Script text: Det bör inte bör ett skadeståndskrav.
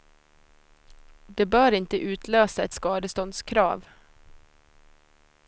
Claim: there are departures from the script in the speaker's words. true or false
true